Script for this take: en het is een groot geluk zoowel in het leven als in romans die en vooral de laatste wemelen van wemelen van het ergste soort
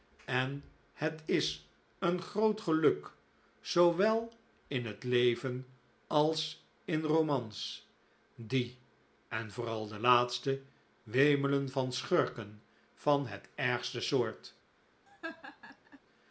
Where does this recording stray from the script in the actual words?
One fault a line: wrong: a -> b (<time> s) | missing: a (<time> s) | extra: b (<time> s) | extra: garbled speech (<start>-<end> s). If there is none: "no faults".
wrong: wemelen -> schurken (11.9 s)